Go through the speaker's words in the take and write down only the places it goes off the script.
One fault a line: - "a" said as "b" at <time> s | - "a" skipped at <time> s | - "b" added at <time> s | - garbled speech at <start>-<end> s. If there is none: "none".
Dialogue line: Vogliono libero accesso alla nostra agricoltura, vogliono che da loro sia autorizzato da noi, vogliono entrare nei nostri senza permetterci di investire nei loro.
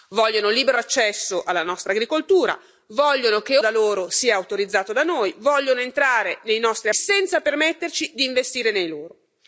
none